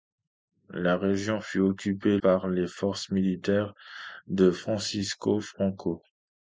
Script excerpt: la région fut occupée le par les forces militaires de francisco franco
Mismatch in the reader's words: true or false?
true